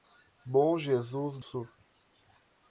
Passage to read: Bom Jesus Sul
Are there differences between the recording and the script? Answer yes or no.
no